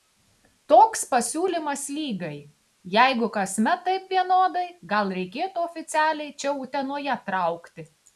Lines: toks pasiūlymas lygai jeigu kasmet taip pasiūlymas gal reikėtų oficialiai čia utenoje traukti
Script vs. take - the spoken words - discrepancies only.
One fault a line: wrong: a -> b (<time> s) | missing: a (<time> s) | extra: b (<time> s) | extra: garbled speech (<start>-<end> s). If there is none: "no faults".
wrong: pasiūlymas -> vienodai (4.2 s)